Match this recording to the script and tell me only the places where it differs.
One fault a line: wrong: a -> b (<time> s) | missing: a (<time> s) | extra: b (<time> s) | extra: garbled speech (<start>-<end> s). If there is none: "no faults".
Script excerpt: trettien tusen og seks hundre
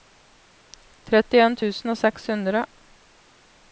no faults